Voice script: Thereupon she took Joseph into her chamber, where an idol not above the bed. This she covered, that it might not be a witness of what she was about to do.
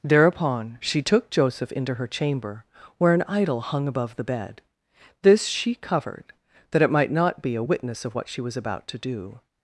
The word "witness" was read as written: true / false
true